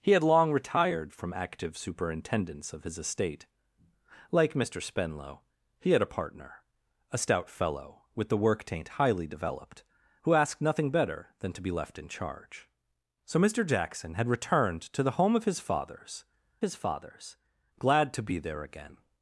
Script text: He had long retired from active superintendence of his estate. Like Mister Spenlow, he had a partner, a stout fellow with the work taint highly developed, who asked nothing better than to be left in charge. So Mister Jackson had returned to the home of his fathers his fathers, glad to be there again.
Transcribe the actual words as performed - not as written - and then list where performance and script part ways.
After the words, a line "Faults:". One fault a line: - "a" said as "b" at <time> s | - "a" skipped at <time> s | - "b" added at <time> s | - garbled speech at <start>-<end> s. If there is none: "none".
He had long retired from active superintendence of his estate. Like Mister Spenlow, he had a partner, a stout fellow with the work taint highly developed, who asked nothing better than to be left in charge. So Mister Jackson had returned to the home of his fathers his fathers, glad to be there again.
Faults:
none